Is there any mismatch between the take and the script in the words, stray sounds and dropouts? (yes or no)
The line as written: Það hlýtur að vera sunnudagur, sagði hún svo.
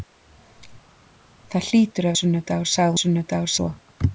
yes